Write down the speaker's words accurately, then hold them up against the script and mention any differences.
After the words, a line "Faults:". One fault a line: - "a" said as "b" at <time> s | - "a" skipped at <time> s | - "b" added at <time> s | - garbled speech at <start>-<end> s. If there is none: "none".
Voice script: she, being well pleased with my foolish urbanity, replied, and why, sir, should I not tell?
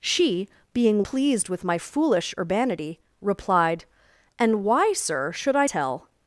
she, being pleased with my foolish urbanity, replied, and why, sir, should I tell?
Faults:
- "well" skipped at 1.0 s
- "not" skipped at 5.7 s